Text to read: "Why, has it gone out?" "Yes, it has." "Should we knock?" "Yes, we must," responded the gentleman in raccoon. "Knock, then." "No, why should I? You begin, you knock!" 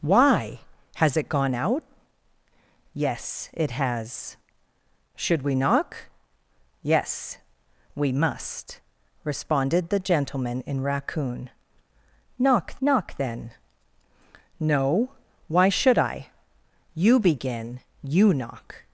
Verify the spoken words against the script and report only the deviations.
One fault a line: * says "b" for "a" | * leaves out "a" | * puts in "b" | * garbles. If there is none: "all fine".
* puts in "knock"